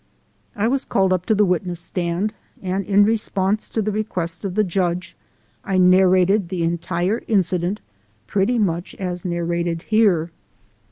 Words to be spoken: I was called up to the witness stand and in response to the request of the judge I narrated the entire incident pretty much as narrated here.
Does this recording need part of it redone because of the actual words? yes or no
no